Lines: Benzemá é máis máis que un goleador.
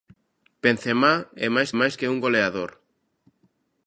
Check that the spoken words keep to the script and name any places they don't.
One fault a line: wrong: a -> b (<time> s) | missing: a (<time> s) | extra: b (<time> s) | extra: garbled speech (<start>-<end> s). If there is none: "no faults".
no faults